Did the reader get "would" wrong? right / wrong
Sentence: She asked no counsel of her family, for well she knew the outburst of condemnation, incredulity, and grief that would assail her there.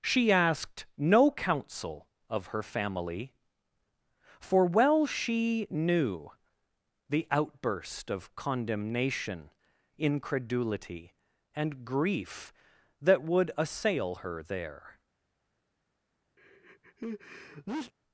right